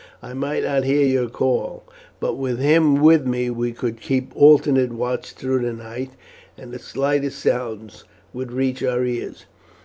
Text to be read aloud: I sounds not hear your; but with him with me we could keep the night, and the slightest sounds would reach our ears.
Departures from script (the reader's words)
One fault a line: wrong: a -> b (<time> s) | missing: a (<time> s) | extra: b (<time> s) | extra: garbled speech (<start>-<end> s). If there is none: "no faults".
wrong: sounds -> might (0.3 s)
extra: call (1.3 s)
extra: alternate watch through (4.3 s)